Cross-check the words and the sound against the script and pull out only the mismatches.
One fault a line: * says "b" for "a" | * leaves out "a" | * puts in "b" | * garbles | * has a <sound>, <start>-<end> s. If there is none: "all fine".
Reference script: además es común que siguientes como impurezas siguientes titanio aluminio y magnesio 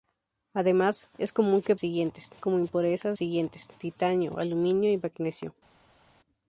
all fine